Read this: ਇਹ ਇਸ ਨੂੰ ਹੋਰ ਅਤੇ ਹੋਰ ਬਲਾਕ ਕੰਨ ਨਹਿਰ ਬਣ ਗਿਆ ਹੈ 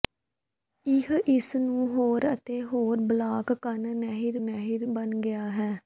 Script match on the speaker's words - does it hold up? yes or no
no